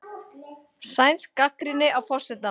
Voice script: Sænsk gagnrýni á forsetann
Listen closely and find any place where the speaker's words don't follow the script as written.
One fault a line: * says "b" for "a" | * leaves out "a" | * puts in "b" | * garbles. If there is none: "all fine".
all fine